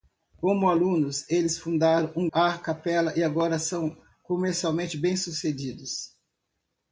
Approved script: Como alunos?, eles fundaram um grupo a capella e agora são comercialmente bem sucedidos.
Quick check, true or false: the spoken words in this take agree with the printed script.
false